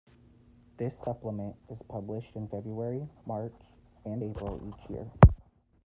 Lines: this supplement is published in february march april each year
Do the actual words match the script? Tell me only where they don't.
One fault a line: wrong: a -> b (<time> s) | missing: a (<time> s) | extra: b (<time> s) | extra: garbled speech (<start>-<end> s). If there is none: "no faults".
extra: and (4.0 s)